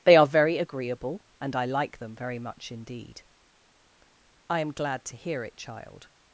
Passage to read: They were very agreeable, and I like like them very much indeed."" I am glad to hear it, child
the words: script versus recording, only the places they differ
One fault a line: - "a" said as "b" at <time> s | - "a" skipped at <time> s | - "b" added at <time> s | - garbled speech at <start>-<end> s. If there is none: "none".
- "were" said as "are" at 0.1 s
- "like" skipped at 2.0 s